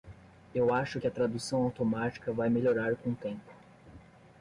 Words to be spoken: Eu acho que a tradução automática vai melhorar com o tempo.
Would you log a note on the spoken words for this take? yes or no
no